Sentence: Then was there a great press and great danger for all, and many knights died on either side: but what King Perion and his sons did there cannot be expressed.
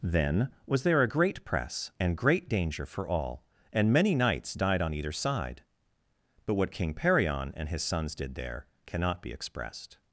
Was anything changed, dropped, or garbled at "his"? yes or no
no